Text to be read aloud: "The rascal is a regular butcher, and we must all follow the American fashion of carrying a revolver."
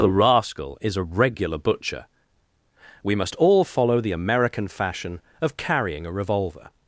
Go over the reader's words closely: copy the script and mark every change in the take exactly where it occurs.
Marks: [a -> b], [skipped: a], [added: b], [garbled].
"The rascal is a regular butcher, [skipped: and] we must all follow the American fashion of carrying a revolver."